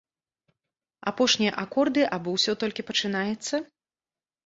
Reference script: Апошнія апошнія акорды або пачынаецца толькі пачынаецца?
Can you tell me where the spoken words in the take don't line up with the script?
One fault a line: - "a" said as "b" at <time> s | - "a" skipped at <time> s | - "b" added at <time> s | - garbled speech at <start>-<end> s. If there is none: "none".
- "апошнія" skipped at 1.5 s
- "пачынаецца" said as "ўсё" at 2.4 s